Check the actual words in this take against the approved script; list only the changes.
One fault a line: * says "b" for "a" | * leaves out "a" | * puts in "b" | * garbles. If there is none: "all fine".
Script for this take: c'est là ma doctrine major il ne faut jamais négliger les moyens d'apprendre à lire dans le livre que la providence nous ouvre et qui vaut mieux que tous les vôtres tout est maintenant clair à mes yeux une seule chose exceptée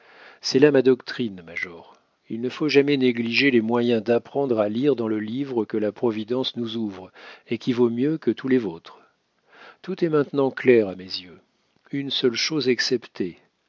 all fine